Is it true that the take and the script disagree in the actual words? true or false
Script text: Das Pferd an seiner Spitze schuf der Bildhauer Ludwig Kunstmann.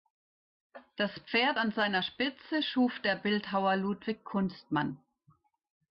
false